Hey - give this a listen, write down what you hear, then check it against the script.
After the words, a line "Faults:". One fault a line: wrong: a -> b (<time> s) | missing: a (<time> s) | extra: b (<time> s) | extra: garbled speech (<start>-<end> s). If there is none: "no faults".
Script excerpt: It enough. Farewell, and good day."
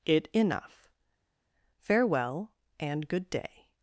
It enough. Farewell, and good day."
Faults:
no faults